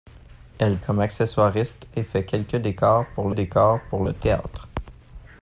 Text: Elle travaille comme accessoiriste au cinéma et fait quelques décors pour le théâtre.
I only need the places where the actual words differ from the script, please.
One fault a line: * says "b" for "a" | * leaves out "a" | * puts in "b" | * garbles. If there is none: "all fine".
* leaves out "travaille"
* leaves out "au cinéma"
* puts in "décors pour"